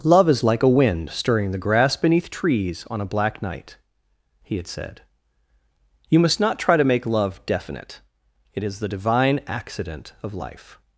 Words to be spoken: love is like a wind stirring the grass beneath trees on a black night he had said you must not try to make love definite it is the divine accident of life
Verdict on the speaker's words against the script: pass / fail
pass